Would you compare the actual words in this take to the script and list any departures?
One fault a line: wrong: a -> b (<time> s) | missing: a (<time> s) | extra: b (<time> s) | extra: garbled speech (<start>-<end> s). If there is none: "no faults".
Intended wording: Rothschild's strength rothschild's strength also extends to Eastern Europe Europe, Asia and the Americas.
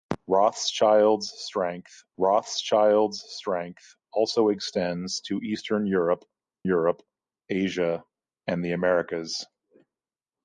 no faults